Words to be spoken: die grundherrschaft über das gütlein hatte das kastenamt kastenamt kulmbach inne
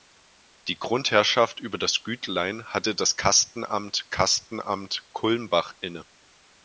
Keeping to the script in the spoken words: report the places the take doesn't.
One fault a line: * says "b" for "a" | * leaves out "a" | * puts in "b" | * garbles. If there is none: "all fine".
all fine